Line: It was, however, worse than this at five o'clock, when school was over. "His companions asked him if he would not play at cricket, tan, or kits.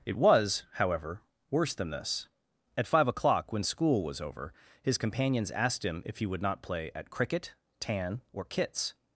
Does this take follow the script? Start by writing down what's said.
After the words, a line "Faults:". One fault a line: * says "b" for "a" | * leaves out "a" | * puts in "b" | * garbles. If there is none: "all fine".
It was, however, worse than this at five o'clock, when school was over. "His companions asked him if he would not play at cricket, tan, or kits.
Faults:
all fine